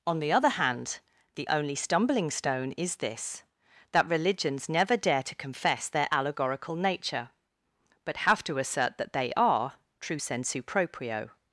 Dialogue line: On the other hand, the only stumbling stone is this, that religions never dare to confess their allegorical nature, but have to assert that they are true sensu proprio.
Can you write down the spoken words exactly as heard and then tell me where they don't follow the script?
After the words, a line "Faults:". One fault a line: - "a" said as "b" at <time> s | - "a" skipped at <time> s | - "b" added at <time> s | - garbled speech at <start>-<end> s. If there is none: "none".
On the other hand, the only stumbling stone is this, that religions never dare to confess their allegorical nature, but have to assert that they are true sensu proprio.
Faults:
none